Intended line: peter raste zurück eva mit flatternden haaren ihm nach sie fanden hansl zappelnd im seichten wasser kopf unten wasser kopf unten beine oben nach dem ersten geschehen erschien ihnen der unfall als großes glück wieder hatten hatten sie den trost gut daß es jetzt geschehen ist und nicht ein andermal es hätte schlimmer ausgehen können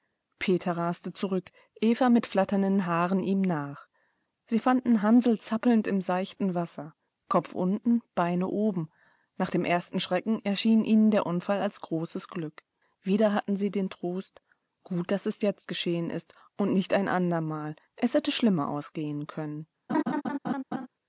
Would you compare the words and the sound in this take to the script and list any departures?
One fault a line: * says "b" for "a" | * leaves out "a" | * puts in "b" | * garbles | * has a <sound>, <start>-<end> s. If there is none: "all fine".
* leaves out "wasser kopf unten"
* says "schrecken" for "geschehen"
* leaves out "hatten"
* has a laugh, 19.9-20.9 s